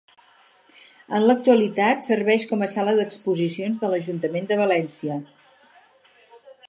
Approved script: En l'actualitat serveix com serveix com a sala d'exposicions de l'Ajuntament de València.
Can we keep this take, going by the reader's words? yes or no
no